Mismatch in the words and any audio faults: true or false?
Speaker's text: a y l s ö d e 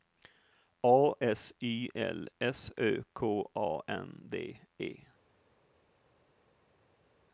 true